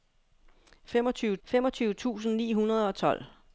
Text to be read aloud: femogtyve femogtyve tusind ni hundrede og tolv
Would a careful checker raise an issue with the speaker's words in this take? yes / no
no